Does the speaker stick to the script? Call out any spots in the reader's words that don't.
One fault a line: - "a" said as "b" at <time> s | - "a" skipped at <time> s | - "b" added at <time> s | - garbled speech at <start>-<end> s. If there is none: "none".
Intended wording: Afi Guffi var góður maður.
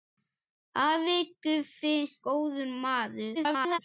- "var" skipped at 1.9 s
- garbled speech at 3.3-3.8 s